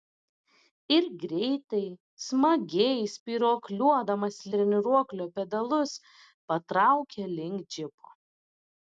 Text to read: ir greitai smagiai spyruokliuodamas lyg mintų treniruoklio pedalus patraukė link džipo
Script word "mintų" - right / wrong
wrong